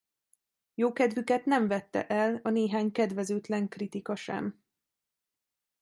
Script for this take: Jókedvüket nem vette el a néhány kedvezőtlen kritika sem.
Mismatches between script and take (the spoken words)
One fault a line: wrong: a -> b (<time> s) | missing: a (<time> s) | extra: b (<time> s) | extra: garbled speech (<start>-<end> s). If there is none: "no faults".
no faults